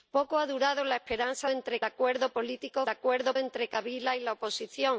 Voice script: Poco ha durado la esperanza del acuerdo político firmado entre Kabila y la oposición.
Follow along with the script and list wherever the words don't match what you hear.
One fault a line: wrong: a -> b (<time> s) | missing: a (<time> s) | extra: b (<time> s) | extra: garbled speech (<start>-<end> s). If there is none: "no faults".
wrong: del -> entre (1.5 s)
wrong: firmado -> acuerdo (2.9 s)